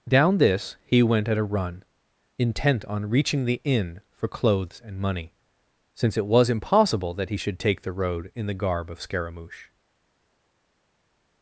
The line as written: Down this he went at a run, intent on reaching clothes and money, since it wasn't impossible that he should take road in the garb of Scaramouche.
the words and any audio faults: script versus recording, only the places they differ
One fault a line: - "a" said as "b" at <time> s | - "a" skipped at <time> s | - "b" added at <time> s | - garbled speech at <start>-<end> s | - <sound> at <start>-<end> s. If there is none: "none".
- "the inn for" added at 3.5 s
- "wasn't" said as "was" at 6.3 s
- "the" added at 7.8 s